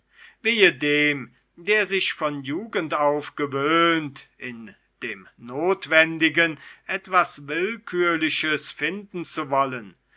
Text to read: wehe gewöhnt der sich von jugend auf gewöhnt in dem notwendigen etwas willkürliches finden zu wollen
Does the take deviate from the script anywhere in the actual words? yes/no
yes